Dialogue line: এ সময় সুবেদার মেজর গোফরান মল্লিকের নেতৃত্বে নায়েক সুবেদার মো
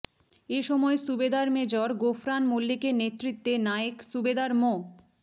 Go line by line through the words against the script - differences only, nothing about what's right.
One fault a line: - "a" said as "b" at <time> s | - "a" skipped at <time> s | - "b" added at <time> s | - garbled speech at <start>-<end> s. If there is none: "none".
none